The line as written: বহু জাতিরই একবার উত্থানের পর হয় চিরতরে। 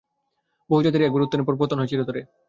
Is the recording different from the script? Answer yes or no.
yes